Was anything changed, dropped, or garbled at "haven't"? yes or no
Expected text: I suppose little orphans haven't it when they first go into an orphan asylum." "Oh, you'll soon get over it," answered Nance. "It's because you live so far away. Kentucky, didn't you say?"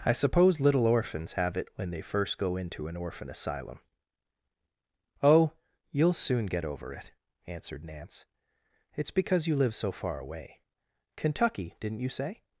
yes